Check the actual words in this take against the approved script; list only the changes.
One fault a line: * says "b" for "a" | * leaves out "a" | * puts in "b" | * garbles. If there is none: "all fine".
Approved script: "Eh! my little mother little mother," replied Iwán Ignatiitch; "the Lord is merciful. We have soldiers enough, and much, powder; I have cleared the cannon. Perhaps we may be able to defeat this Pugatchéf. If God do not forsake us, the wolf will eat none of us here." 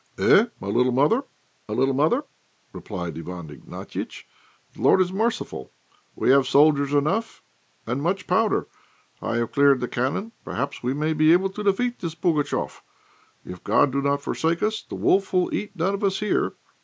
all fine